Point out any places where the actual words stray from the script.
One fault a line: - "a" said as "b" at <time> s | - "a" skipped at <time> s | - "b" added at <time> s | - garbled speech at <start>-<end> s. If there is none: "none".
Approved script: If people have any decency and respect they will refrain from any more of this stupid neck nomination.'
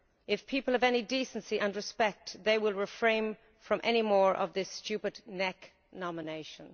none